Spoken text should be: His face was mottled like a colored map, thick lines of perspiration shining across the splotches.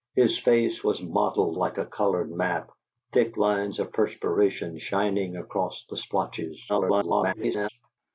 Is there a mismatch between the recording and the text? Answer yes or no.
yes